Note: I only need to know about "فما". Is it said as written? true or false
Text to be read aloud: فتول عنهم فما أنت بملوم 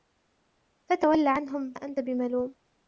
false